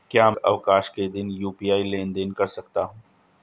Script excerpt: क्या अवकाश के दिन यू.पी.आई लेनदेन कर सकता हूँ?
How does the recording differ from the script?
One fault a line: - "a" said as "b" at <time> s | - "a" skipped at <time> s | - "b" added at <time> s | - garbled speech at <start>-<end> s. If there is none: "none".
none